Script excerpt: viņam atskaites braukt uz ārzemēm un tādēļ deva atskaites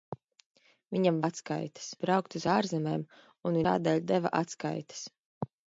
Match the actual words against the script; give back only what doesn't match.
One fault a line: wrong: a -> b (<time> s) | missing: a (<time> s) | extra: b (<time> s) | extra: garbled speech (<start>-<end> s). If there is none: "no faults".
no faults